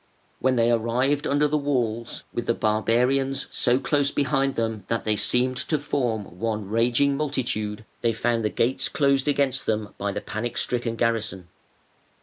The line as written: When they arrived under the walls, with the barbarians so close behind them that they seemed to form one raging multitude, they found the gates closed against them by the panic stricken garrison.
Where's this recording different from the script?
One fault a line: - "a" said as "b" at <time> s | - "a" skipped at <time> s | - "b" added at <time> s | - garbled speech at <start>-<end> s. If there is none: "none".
none